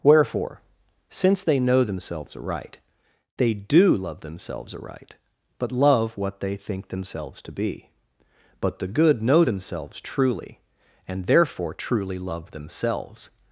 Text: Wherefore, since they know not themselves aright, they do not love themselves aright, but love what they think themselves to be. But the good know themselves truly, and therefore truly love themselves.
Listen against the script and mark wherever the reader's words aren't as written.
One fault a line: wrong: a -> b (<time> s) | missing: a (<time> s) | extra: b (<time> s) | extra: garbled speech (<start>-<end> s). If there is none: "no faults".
missing: not (1.8 s)
missing: not (4.0 s)